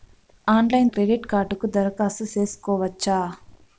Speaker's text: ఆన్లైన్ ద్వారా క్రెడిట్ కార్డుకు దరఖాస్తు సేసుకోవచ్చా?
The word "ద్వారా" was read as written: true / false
false